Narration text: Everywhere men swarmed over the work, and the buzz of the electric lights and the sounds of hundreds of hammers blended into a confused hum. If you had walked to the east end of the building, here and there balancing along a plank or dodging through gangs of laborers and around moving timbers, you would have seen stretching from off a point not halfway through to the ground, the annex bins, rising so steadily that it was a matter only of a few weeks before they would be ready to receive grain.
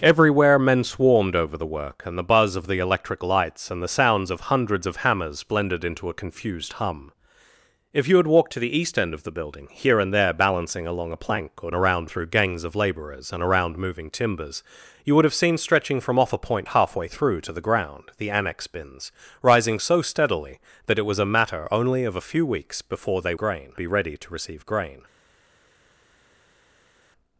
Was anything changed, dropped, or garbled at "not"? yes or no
yes